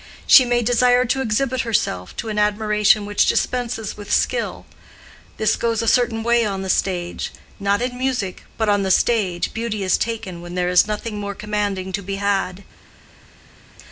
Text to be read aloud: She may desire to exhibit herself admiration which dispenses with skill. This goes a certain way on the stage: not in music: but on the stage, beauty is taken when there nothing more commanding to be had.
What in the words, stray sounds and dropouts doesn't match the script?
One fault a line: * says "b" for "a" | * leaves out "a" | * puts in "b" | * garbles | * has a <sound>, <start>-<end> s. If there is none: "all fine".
* puts in "to an"
* puts in "is"